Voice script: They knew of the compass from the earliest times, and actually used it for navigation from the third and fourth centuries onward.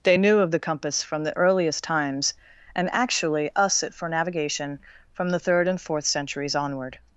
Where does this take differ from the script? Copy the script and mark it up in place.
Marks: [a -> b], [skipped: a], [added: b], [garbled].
They knew of the compass from the earliest times, and actually [used -> us] it for navigation from the third and fourth centuries onward.